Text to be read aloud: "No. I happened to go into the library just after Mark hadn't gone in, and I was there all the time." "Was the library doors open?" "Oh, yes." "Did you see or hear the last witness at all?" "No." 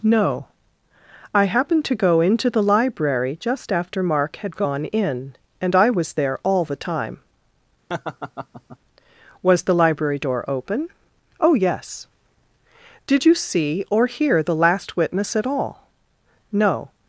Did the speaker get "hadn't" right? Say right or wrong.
wrong